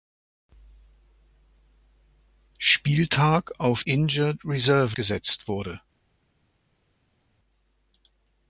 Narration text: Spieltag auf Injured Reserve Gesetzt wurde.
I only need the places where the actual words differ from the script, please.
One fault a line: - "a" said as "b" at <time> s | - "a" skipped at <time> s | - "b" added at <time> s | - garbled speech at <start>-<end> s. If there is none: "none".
none